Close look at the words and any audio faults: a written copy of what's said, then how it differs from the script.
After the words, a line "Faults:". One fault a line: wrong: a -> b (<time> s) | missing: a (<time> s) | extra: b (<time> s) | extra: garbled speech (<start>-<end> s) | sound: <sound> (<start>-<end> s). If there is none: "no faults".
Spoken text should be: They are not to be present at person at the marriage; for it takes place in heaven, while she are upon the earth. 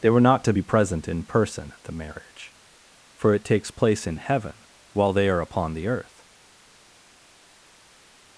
They were not to be present in person at the marriage; for it takes place in heaven, while they are upon the earth.
Faults:
wrong: are -> were (0.1 s)
wrong: at -> in (1.1 s)
wrong: she -> they (5.1 s)